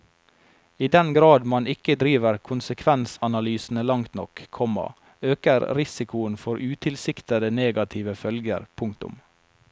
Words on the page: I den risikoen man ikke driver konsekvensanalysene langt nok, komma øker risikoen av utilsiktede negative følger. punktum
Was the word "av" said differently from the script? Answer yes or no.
yes